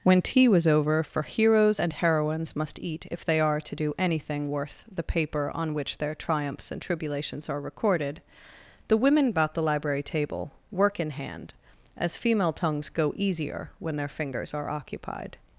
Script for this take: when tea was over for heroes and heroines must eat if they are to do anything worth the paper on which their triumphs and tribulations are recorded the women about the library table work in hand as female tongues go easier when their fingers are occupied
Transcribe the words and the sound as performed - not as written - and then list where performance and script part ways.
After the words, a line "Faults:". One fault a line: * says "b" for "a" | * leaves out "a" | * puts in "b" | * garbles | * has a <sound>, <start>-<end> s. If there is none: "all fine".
when tea was over for heroes and heroines must eat if they are to do anything worth the paper on which their triumphs and tribulations are recorded the women about the library table work in hand as female tongues go easier when their fingers are occupied
Faults:
all fine